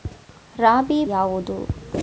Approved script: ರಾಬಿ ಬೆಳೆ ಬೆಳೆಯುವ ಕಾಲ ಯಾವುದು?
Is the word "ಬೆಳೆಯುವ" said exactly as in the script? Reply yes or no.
no